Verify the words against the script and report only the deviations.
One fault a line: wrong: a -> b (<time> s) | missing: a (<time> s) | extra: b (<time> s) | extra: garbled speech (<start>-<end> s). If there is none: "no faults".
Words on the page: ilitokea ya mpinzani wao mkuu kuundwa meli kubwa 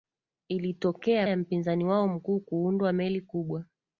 no faults